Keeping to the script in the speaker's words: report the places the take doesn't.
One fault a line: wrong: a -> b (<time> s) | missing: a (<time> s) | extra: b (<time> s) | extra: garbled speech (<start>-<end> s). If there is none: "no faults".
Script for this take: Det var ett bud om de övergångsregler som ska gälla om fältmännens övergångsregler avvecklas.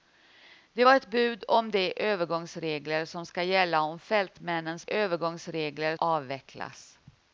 no faults